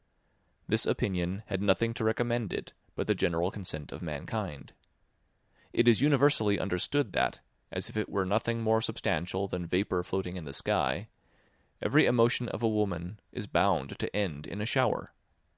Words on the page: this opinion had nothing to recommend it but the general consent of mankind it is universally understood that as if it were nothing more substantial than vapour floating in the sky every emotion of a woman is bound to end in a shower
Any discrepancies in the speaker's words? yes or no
no